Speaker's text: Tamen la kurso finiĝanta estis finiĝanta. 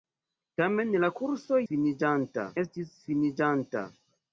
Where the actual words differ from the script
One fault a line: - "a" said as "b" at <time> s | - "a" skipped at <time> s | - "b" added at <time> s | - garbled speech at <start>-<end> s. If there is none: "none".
none